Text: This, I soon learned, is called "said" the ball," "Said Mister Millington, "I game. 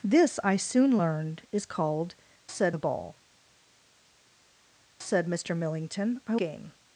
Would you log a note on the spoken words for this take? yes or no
no